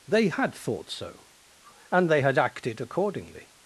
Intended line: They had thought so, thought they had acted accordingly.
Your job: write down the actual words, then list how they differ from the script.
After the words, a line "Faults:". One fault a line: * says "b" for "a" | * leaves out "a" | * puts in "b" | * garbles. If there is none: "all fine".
They had thought so, and they had acted accordingly.
Faults:
* says "and" for "thought"